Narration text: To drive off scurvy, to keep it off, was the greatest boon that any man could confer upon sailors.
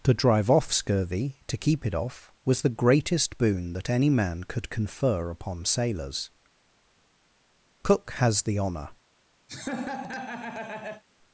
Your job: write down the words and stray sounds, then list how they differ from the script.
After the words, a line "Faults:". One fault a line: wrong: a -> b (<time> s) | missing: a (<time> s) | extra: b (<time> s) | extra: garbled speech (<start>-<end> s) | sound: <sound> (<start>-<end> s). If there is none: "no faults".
To drive off scurvy, to keep it off, was the greatest boon that any man could confer upon sailors. Cook has the honour
Faults:
extra: Cook has the honour (7.8 s)
sound: laugh (9.5-11.0 s)